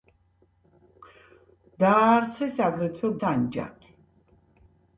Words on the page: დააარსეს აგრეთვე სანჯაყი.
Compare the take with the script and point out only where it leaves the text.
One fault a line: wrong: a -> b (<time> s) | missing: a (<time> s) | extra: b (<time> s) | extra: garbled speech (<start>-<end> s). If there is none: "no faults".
no faults